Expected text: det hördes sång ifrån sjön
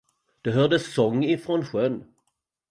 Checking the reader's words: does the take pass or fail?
pass